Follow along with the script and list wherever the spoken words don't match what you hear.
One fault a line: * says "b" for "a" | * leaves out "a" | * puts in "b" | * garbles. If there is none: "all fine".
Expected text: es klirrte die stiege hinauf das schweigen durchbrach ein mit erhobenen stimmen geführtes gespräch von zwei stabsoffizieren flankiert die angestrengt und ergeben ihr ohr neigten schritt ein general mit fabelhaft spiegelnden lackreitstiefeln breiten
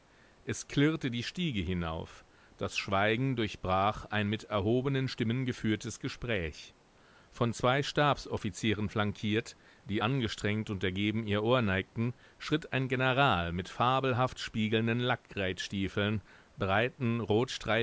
all fine